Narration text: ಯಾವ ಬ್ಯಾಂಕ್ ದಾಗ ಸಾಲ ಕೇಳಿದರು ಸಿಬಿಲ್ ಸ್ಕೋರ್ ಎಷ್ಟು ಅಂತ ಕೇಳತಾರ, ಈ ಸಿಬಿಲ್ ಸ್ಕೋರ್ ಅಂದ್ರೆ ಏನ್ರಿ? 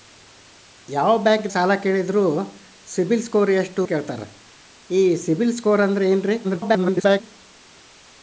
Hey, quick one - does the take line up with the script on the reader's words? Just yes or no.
no